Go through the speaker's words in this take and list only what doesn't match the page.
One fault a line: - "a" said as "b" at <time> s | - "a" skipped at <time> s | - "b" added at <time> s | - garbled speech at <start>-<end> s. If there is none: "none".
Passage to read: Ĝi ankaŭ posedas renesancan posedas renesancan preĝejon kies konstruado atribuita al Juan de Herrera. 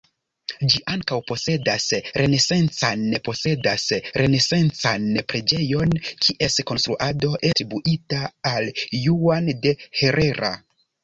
none